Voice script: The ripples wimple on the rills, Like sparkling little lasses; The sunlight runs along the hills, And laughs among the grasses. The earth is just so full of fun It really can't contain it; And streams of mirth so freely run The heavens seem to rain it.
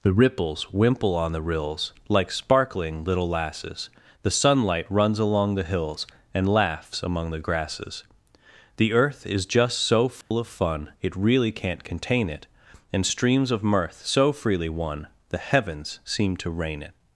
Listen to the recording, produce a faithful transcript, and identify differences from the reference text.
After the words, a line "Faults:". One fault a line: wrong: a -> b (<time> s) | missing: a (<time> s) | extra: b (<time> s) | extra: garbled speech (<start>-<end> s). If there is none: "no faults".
The ripples wimple on the rills, Like sparkling little lasses; The sunlight runs along the hills, And laughs among the grasses. The earth is just so full of fun It really can't contain it; And streams of mirth so freely won The heavens seem to rain it.
Faults:
wrong: run -> won (14.7 s)